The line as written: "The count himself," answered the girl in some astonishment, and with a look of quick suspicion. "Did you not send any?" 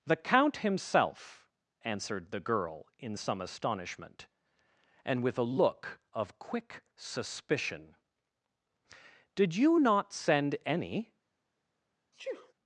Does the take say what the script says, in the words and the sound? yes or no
no